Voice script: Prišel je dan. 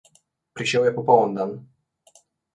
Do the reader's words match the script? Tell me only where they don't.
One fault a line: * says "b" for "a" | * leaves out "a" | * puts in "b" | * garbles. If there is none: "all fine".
* puts in "popoln"